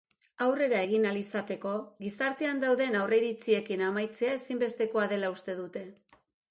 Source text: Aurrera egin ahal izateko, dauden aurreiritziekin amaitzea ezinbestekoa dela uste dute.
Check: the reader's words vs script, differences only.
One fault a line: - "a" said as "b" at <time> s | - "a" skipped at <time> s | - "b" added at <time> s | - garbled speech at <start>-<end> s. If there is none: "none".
- "gizartean" added at 2.1 s